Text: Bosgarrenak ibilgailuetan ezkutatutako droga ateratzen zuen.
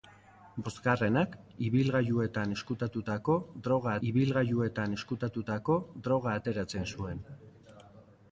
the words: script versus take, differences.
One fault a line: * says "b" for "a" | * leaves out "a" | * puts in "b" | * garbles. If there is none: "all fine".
* puts in "ibilgailuetan ezkutatutako droga"